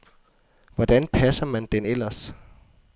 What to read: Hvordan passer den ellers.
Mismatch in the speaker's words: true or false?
true